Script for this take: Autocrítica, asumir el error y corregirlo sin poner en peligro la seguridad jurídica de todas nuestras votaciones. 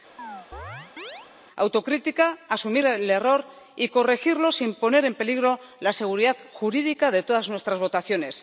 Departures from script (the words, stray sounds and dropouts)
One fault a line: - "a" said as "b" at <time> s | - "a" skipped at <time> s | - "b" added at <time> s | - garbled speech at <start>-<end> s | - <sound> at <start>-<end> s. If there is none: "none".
- chirp at 0.2-1.3 s